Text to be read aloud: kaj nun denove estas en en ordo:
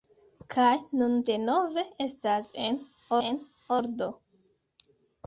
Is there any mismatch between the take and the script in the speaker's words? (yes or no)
no